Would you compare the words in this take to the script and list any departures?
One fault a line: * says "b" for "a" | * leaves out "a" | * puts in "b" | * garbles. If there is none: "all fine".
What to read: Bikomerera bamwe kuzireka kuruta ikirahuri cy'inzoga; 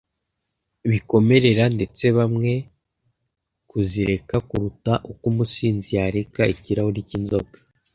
* puts in "ndetse"
* puts in "uko umusinzi yareka"